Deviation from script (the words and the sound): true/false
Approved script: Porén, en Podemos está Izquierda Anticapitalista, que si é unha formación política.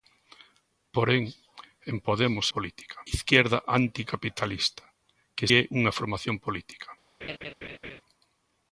true